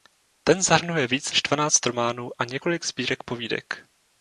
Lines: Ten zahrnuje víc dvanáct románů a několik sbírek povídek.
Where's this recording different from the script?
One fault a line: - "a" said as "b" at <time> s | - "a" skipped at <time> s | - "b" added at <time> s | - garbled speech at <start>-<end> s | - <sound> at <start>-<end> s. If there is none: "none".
- "než" added at 1.3 s